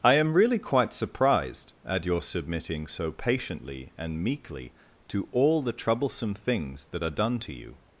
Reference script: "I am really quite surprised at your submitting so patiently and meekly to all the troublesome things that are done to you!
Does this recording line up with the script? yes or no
yes